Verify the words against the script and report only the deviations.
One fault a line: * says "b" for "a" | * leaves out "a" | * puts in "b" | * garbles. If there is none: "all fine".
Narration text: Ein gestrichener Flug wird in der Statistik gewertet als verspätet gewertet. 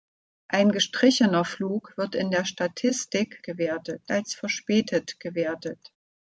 all fine